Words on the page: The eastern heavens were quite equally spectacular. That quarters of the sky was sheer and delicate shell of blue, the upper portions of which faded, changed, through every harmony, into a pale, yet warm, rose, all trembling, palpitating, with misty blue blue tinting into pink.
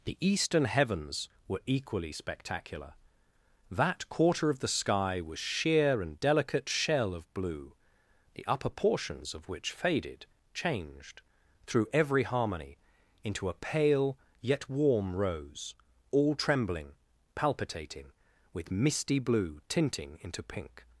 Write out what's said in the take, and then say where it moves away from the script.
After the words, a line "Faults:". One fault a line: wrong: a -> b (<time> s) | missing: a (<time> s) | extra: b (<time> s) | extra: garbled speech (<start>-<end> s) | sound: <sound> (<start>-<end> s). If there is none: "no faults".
The eastern heavens were equally spectacular. That quarter of the sky was sheer and delicate shell of blue, the upper portions of which faded, changed, through every harmony, into a pale, yet warm, rose, all trembling, palpitating, with misty blue tinting into pink.
Faults:
missing: quite (1.6 s)
wrong: quarters -> quarter (4.1 s)
missing: blue (19.6 s)